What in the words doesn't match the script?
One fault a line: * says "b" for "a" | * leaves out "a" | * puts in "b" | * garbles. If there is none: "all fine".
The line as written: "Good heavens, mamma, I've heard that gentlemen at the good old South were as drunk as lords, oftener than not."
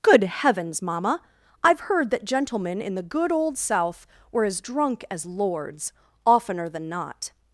* says "in" for "at"